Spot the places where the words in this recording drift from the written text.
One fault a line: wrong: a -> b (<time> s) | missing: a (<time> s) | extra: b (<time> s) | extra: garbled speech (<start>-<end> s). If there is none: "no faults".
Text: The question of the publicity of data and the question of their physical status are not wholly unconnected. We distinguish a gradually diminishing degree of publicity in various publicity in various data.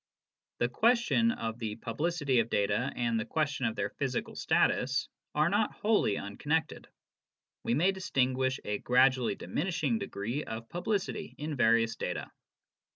extra: may (7.8 s)
missing: publicity in various (11.9 s)